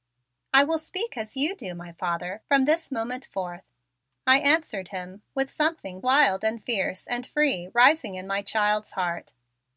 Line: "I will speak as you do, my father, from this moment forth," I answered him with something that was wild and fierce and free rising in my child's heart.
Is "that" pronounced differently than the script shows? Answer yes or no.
yes